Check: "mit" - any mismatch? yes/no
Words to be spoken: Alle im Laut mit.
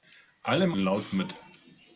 no